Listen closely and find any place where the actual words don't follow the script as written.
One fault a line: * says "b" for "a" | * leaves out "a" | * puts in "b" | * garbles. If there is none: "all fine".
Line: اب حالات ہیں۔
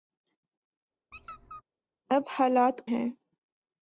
all fine